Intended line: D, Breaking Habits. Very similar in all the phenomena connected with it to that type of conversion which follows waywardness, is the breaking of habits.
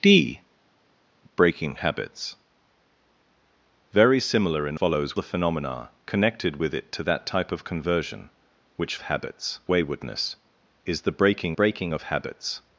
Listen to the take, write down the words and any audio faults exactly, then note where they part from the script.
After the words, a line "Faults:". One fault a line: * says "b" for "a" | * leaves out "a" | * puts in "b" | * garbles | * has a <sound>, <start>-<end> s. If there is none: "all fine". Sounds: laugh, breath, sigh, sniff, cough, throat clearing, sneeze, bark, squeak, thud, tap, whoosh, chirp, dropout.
D, Breaking Habits. Very similar in follows the phenomena connected with it to that type of conversion which habits waywardness, is the breaking breaking of habits.
Faults:
* says "follows" for "all"
* says "habits" for "follows"
* puts in "breaking"